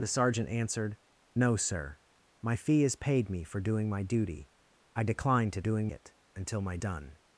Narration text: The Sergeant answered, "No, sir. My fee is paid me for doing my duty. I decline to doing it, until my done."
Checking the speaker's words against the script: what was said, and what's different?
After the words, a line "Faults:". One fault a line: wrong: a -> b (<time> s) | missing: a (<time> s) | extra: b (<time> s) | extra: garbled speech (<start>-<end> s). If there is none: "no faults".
The Sergeant answered, "No, sir. My fee is paid me for doing my duty. I decline to doing it, until my done."
Faults:
no faults